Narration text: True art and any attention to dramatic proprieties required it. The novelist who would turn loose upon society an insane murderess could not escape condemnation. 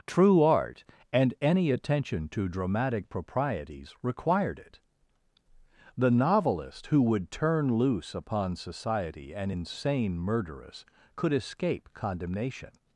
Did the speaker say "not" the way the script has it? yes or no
no